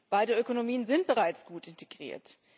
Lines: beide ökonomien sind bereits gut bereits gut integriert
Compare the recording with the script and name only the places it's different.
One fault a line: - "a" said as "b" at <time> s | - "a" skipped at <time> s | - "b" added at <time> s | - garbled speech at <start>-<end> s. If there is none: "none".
- "bereits gut" skipped at 1.7 s